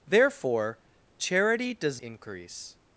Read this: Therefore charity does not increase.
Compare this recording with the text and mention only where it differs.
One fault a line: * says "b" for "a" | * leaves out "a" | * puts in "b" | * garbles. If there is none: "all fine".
* leaves out "not"